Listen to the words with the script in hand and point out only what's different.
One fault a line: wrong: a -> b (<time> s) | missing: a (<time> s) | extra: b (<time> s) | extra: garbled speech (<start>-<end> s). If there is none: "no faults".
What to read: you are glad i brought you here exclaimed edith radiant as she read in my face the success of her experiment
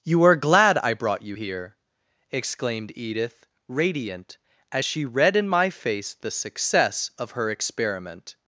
no faults